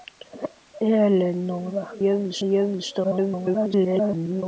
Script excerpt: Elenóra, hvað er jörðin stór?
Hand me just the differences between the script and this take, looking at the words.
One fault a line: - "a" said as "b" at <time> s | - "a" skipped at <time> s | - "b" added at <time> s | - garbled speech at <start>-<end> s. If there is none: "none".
- "hvað" said as "jörðin" at 2.1 s
- garbled speech at 3.0-4.4 s